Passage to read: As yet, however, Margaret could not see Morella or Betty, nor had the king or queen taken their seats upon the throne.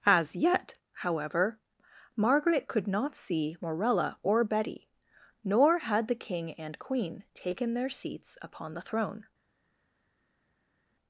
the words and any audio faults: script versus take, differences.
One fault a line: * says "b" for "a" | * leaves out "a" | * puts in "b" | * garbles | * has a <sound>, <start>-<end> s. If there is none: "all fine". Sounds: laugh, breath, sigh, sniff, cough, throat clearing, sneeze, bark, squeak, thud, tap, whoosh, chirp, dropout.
* says "and" for "or"